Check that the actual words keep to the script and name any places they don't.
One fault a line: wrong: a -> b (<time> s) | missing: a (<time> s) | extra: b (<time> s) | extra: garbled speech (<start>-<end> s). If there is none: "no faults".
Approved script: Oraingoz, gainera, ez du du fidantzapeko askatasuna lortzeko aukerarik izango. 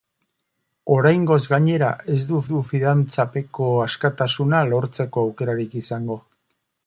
no faults